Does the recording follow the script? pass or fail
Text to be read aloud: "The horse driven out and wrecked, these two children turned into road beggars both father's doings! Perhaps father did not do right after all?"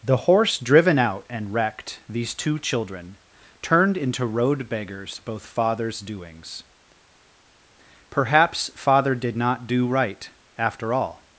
pass